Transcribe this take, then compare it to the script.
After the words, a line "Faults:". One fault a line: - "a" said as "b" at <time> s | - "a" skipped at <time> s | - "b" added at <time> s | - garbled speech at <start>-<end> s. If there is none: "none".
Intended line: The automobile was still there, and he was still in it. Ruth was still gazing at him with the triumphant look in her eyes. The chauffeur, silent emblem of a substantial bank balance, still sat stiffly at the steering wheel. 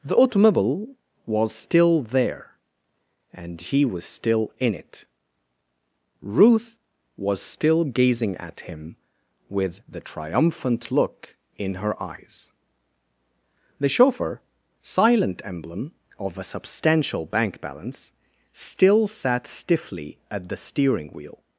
The automobile was still there, and he was still in it. Ruth was still gazing at him with the triumphant look in her eyes. The chauffeur, silent emblem of a substantial bank balance, still sat stiffly at the steering wheel.
Faults:
none